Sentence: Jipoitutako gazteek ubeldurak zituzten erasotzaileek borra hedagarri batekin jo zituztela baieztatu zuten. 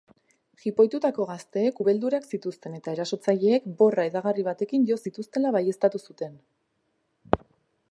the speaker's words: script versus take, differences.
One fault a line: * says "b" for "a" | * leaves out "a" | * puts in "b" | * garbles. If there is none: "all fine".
* puts in "eta"